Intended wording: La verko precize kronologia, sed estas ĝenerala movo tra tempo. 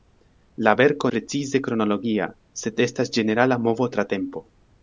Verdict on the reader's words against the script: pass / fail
pass